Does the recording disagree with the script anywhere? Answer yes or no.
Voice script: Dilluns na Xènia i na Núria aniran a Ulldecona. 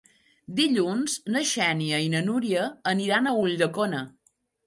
no